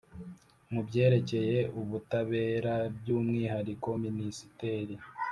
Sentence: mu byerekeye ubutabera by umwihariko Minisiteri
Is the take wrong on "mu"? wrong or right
right